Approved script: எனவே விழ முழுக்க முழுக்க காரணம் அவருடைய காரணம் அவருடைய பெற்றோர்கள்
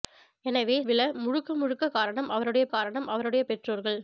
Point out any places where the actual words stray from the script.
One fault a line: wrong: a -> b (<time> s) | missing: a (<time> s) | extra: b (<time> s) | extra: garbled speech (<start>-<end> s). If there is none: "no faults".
no faults